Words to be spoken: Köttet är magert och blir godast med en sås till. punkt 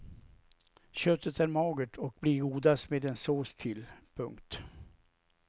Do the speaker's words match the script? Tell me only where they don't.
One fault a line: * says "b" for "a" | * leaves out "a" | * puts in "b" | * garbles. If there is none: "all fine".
all fine